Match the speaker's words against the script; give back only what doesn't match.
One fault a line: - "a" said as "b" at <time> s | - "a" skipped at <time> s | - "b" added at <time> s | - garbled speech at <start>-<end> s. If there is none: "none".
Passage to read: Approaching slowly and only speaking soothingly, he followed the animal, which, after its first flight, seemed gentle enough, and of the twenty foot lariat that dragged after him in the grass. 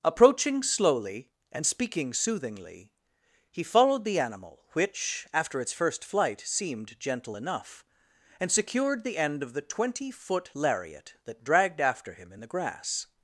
- "only" skipped at 1.6 s
- "secured the end" added at 8.5 s